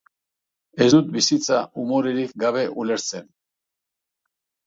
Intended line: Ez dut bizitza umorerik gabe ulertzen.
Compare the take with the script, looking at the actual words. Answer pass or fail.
pass